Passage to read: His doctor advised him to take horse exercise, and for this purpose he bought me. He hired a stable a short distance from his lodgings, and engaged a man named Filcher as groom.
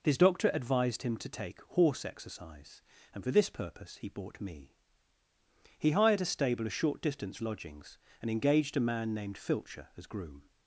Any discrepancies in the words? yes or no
yes